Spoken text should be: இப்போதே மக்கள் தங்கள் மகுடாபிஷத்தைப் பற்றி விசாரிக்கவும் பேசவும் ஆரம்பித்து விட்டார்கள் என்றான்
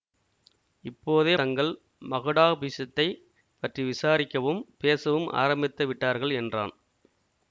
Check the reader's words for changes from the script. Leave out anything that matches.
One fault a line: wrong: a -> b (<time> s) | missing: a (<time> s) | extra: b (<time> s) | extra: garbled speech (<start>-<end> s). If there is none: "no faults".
missing: மக்கள் (1.4 s)